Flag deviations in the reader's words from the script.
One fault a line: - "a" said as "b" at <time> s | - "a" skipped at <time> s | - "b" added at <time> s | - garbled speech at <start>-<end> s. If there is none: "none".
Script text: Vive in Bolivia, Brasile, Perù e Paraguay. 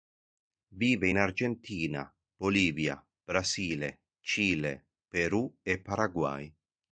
- "Argentina" added at 1.2 s
- "Cile" added at 4.2 s